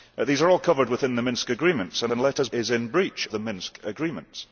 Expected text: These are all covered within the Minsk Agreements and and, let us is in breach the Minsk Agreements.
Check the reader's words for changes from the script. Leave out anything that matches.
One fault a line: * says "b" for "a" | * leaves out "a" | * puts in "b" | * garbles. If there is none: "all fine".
all fine